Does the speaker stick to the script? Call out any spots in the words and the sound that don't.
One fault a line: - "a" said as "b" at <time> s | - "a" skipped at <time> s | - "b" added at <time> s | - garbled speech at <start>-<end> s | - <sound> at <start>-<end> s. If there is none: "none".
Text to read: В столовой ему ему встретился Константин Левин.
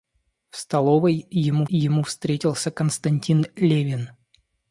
none